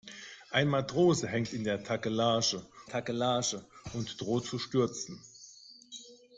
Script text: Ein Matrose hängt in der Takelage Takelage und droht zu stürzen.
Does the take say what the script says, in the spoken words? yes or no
yes